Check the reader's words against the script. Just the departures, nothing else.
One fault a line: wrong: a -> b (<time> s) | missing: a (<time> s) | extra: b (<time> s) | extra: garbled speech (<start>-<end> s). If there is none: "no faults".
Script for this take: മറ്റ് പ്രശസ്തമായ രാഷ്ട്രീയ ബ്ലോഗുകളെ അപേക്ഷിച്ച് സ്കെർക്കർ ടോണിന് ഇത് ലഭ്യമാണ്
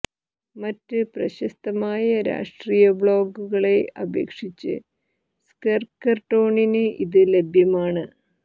no faults